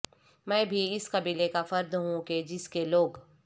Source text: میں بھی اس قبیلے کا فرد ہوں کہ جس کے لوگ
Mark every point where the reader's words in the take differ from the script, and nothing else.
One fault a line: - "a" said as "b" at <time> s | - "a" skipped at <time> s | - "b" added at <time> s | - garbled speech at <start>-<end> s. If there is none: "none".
none